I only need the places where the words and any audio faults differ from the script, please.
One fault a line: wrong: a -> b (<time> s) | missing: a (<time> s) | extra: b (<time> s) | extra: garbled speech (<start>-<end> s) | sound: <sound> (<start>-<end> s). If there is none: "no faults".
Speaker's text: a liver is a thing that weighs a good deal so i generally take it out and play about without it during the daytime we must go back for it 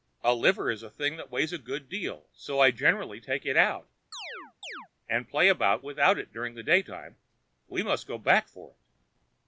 sound: chirp (4.1-4.9 s)